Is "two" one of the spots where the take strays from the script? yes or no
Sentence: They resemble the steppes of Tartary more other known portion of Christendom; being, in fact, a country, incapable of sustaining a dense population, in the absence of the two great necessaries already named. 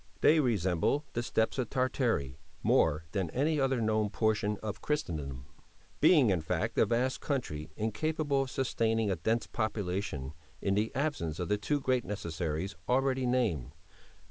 no